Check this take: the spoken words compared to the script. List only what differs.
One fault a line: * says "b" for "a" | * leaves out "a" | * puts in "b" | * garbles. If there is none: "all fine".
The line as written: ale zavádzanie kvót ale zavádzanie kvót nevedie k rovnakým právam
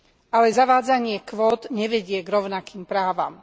* leaves out "ale zavádzanie kvót"